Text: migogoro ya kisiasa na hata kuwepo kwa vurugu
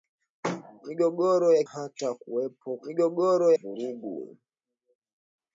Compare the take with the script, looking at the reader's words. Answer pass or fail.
fail